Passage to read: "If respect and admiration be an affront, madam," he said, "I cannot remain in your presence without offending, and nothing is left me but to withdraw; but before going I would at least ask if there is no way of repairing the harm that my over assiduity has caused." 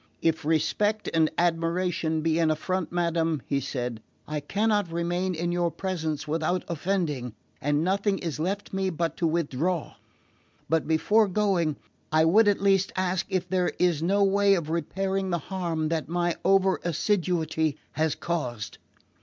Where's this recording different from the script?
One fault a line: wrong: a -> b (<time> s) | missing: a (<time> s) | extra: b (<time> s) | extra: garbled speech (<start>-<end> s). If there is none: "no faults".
no faults